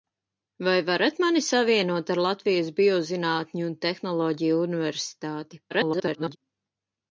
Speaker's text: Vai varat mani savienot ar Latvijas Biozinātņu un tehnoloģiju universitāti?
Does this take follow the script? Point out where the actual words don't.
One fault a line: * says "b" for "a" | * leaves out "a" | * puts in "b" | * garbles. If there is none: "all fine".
* garbles